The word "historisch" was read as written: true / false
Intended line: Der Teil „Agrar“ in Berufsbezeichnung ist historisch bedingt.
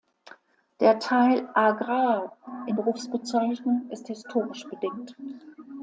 true